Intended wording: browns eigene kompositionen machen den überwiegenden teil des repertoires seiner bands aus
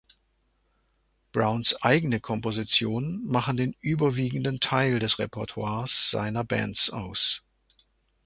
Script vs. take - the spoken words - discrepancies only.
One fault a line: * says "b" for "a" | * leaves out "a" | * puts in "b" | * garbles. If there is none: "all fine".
all fine